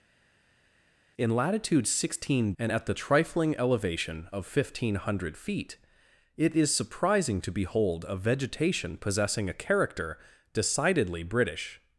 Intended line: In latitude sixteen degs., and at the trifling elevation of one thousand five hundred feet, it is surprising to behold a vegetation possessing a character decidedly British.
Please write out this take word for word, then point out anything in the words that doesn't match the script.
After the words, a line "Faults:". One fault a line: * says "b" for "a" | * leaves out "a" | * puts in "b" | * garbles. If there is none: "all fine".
In latitude sixteen., and at the trifling elevation of one thousand five hundred feet, it is surprising to behold a vegetation possessing a character decidedly British.
Faults:
* leaves out "degs"